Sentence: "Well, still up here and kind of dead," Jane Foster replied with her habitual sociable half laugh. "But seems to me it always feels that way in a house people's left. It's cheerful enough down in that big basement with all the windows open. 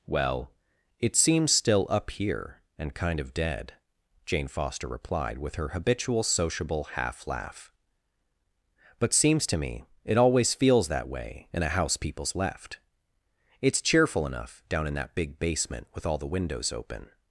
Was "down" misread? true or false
false